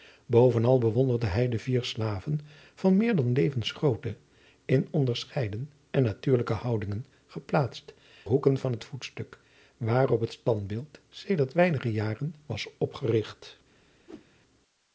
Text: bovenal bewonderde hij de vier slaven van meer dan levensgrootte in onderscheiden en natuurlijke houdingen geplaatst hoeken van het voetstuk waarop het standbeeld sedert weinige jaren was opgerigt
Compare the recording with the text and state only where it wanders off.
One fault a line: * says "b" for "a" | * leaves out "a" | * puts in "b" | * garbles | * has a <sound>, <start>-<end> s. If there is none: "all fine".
* has a whoosh, 14.1-14.3 s